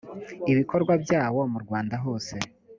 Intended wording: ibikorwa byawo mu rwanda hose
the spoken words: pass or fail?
pass